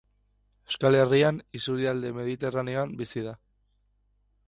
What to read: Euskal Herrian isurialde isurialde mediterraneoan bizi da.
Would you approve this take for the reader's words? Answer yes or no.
no